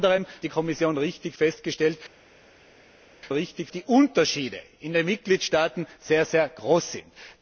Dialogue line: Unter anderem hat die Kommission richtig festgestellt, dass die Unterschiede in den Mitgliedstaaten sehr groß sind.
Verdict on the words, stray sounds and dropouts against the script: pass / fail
fail